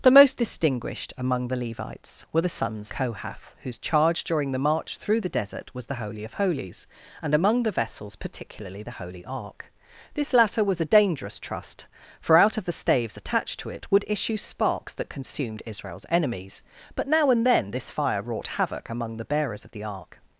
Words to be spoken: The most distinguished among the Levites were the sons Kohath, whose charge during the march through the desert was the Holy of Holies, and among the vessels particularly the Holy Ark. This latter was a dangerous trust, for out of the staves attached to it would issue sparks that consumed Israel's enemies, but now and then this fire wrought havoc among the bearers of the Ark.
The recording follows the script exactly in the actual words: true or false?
true